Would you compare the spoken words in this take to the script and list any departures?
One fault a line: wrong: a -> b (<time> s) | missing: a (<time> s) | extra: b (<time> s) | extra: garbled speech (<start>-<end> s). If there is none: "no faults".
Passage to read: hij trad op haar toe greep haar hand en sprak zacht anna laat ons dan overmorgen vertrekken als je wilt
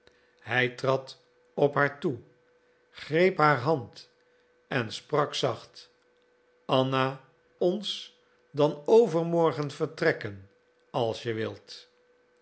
missing: laat (7.2 s)